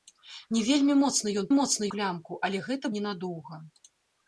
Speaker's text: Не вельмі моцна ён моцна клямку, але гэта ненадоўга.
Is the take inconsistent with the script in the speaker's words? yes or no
no